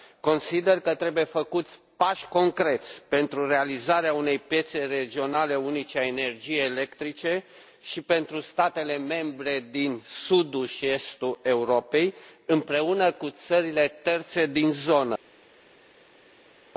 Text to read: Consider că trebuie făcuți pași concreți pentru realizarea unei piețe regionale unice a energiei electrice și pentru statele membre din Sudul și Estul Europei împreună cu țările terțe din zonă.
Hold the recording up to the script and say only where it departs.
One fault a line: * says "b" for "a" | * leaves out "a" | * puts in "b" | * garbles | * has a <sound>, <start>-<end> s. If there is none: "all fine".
all fine